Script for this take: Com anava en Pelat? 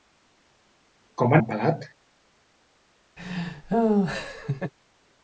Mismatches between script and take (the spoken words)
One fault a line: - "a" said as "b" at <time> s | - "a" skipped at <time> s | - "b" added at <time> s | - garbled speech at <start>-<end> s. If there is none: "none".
- "anava" skipped at 1.4 s